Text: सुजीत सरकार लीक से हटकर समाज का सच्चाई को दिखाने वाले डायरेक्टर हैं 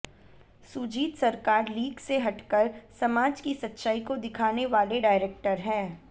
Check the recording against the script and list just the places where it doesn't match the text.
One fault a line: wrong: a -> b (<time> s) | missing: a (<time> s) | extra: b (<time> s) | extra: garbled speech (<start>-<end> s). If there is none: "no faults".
wrong: का -> की (3.4 s)